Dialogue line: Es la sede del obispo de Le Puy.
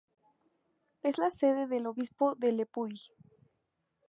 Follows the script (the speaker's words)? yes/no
yes